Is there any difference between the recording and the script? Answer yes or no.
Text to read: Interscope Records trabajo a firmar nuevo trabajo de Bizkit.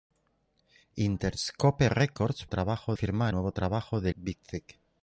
no